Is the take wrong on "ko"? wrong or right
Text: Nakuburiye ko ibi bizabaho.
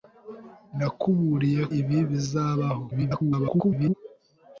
wrong